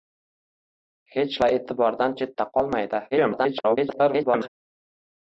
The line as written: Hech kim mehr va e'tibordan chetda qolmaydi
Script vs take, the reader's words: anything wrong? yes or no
yes